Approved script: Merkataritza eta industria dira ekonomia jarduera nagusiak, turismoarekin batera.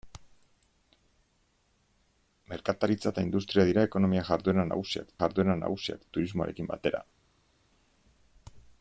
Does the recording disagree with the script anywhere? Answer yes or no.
yes